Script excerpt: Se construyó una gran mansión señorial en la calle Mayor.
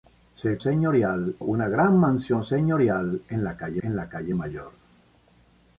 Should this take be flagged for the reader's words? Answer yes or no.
yes